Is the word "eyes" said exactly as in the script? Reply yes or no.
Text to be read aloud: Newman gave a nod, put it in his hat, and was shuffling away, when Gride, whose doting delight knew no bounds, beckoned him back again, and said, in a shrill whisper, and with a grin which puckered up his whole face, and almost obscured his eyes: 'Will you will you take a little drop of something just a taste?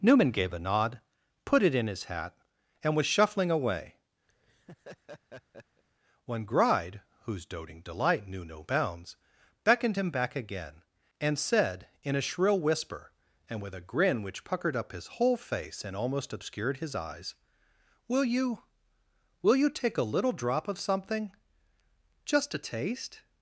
yes